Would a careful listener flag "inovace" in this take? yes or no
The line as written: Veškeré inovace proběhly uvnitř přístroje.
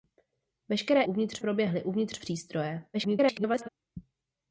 yes